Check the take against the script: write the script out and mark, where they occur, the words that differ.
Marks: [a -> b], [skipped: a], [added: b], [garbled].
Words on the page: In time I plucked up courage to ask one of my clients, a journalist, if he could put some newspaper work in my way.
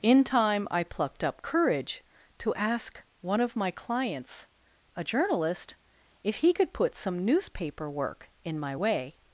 In time I plucked up courage to ask one of my clients, a journalist, if he could put some newspaper work in my way.